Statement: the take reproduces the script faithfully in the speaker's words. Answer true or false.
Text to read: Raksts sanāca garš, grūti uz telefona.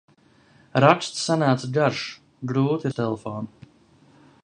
true